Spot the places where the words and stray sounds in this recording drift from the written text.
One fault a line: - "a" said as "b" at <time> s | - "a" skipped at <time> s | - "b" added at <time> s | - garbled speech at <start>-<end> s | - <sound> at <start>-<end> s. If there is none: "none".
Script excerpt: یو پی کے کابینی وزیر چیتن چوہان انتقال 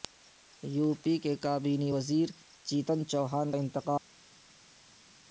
none